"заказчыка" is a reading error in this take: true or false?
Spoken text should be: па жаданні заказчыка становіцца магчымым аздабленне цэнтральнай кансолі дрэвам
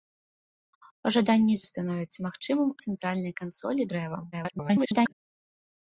true